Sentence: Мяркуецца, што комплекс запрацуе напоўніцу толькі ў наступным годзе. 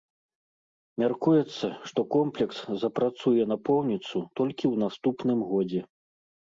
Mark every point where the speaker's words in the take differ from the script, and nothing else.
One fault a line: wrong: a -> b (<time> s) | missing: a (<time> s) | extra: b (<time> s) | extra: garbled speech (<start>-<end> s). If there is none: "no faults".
no faults